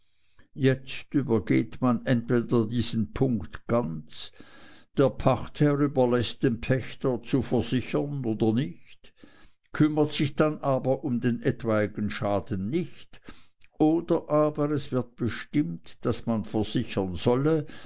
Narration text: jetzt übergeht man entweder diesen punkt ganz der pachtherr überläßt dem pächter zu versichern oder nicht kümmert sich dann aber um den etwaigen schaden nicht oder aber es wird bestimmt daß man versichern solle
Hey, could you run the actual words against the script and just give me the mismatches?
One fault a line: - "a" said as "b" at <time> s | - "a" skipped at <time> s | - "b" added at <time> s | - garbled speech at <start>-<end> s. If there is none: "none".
none